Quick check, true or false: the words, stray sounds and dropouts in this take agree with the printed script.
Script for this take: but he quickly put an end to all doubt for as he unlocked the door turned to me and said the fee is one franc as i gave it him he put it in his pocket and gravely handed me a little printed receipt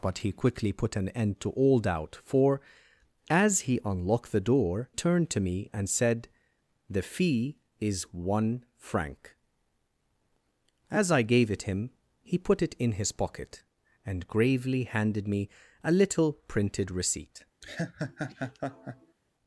false